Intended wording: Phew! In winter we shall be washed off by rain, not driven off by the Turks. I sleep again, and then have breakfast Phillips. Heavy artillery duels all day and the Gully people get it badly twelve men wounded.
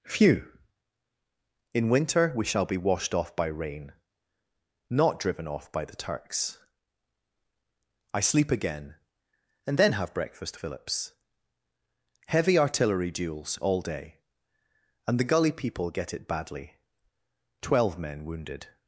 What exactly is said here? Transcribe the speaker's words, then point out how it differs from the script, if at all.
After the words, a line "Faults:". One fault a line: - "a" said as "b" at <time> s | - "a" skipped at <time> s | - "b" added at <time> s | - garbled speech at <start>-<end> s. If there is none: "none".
Phew! In winter we shall be washed off by rain, not driven off by the Turks. I sleep again, and then have breakfast Phillips. Heavy artillery duels all day and the Gully people get it badly twelve men wounded.
Faults:
none